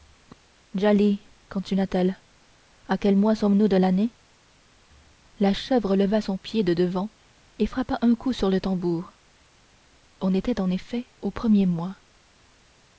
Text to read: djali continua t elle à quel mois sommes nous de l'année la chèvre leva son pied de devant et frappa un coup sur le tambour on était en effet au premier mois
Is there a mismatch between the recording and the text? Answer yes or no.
no